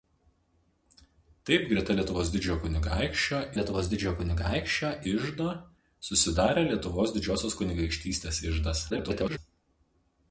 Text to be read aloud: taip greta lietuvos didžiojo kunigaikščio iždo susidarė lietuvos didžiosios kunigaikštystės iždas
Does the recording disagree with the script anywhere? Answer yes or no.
yes